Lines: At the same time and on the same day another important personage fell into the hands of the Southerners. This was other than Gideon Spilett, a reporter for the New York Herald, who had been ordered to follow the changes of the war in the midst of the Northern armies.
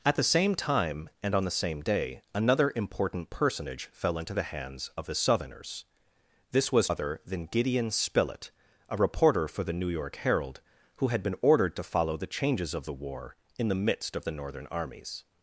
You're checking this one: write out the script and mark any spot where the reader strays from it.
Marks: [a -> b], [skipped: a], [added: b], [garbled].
At the same time and on the same day another important personage fell into the hands of the Southerners. This was other than Gideon Spilett, a reporter for the New York Herald, who had been ordered to follow the changes of the war in the midst of the Northern armies.